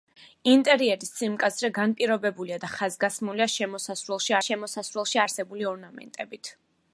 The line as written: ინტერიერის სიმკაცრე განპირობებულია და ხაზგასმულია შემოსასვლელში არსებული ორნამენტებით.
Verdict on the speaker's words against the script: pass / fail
fail